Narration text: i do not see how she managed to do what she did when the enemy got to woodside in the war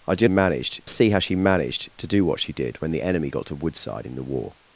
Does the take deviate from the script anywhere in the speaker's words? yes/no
yes